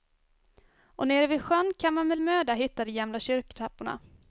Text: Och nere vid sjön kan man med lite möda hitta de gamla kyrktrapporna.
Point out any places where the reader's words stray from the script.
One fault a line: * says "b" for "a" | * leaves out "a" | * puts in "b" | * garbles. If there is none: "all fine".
* leaves out "lite"